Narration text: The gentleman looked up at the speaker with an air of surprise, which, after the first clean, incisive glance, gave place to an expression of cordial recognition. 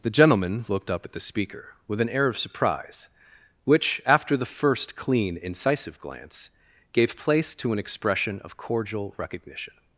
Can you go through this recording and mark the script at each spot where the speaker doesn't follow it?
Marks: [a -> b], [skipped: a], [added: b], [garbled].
The gentleman looked up at the speaker with an air of surprise, which, after the first clean, incisive glance, gave place to an expression of cordial recognition.